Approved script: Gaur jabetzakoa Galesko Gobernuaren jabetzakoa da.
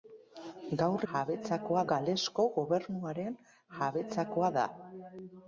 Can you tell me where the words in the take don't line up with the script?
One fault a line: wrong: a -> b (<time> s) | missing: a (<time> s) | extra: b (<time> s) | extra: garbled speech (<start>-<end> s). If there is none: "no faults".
no faults